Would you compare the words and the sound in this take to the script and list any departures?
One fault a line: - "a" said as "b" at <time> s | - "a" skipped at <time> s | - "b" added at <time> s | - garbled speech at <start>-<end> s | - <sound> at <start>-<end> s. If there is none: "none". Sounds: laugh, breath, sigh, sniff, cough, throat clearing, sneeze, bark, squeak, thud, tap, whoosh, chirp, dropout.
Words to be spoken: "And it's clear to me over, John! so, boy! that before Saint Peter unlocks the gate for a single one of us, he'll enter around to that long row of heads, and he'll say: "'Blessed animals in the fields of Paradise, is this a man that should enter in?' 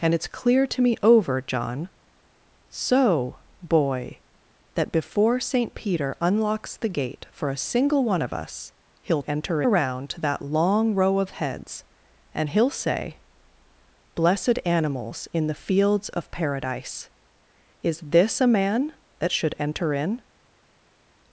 none